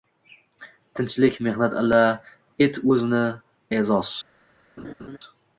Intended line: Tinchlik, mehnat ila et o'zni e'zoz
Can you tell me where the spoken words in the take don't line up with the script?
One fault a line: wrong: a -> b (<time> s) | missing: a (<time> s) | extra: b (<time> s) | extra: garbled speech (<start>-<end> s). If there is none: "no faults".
no faults